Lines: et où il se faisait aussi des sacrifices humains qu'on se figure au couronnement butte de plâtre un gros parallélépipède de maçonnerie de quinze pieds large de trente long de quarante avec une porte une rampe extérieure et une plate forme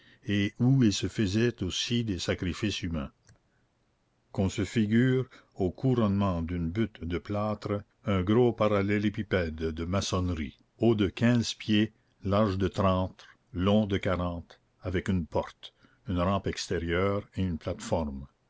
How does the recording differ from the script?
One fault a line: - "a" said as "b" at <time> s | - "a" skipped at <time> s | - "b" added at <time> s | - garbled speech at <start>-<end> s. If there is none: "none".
- "d'une" added at 6.4 s
- "haut" added at 10.8 s